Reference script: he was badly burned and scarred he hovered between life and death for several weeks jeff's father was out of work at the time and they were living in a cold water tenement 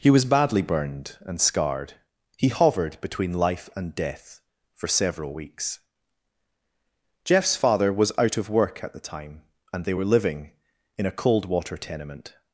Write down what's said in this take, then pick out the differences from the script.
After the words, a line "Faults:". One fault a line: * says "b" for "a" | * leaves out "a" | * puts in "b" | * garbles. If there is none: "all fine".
he was badly burned and scarred he hovered between life and death for several weeks jeff's father was out of work at the time and they were living in a cold water tenement
Faults:
all fine